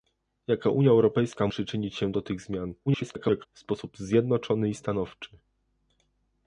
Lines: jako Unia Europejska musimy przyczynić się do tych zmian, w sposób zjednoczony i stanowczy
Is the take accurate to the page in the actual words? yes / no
no